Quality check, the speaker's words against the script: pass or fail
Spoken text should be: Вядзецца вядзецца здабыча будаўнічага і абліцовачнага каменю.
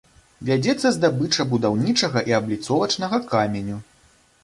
fail